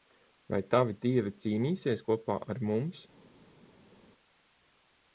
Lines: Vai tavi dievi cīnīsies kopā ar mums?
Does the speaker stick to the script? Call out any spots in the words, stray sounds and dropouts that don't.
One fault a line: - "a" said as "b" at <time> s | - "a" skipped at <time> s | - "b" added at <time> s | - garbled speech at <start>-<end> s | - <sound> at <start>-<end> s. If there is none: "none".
none